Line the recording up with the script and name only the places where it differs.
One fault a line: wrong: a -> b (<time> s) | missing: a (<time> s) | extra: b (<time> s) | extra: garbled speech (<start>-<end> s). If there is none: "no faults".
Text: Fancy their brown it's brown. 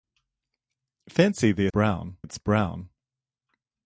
no faults